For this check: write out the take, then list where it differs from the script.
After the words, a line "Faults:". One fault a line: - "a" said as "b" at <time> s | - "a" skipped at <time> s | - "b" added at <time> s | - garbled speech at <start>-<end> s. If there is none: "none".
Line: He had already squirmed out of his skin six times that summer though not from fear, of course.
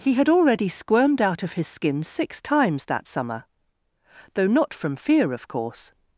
He had already squirmed out of his skin six times that summer though not from fear, of course.
Faults:
none